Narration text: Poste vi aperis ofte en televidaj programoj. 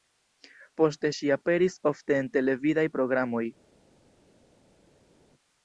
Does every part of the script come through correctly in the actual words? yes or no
no